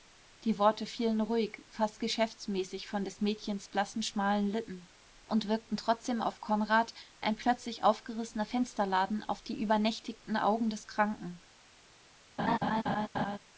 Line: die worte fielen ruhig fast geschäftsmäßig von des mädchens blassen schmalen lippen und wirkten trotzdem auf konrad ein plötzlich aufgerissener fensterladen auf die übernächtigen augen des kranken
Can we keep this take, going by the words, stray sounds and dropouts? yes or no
no